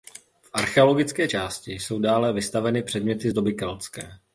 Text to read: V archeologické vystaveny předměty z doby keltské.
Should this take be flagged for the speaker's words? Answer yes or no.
yes